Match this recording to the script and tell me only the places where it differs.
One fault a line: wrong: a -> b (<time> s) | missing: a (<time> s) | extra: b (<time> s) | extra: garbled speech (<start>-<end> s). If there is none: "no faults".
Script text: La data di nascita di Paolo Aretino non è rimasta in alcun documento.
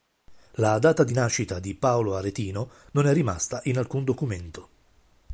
no faults